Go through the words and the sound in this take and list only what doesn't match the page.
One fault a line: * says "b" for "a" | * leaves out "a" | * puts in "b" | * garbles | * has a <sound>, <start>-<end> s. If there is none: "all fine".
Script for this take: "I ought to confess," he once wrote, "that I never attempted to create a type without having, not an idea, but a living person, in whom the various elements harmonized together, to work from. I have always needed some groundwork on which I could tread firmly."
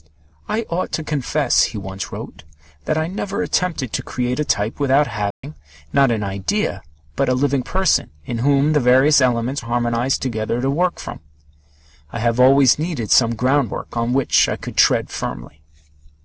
* has a dropout, 5.3-5.4 s